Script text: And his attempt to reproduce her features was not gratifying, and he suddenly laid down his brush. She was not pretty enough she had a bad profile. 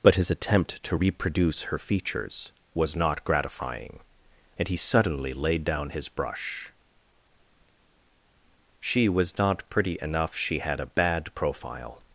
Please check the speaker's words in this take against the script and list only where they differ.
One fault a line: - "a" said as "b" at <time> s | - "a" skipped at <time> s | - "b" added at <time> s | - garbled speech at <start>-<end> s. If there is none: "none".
- "And" said as "But" at 0.0 s